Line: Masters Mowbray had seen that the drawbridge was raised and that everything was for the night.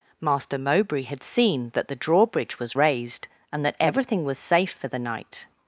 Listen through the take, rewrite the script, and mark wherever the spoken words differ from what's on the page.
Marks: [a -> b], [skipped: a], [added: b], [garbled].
[Masters -> Master] Mowbray had seen that the drawbridge was raised and that everything was [added: safe] for the night.